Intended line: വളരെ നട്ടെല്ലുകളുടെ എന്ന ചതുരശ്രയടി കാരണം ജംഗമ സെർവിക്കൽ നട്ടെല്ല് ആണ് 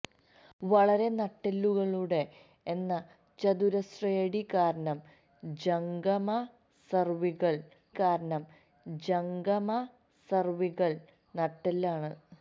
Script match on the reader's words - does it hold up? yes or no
no